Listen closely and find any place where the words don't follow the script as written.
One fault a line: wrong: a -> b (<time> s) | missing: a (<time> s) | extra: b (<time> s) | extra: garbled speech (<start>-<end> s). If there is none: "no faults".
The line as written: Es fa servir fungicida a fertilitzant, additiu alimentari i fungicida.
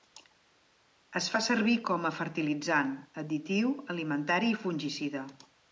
wrong: fungicida -> com (1.9 s)